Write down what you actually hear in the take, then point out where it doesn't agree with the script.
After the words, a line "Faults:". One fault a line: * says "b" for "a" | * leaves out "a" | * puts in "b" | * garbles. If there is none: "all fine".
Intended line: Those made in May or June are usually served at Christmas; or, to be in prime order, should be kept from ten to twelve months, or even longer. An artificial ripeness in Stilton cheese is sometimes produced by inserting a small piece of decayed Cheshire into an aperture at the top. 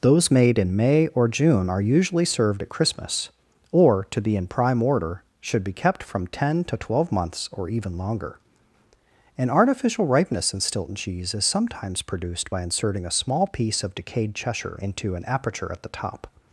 Those made in May or June are usually served at Christmas; or, to be in prime order, should be kept from ten to twelve months, or even longer. An artificial ripeness in Stilton cheese is sometimes produced by inserting a small piece of decayed Cheshire into an aperture at the top.
Faults:
all fine